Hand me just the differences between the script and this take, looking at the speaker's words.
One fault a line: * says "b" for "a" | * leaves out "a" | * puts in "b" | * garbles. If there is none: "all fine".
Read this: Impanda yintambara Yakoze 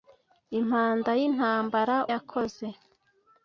all fine